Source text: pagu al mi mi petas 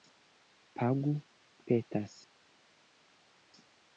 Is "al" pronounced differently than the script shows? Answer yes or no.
yes